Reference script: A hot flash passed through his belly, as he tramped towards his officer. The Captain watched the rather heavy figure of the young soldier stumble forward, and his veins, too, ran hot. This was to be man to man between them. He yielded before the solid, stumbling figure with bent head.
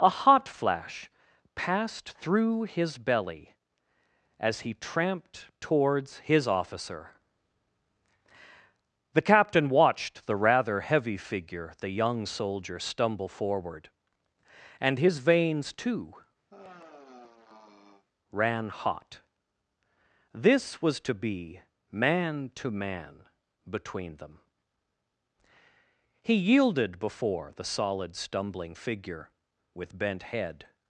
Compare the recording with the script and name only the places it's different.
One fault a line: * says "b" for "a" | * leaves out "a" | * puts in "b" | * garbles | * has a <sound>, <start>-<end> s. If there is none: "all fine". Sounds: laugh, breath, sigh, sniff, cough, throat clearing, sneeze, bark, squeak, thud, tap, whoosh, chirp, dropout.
* leaves out "of"
* has a sigh, 16.5-18.1 s